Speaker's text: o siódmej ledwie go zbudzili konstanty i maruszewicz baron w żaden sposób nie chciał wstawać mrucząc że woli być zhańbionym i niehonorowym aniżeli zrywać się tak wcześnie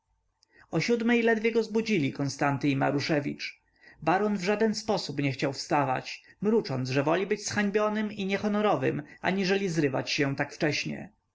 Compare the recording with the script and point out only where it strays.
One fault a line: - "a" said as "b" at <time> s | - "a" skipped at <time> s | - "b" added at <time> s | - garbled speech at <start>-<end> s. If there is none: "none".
none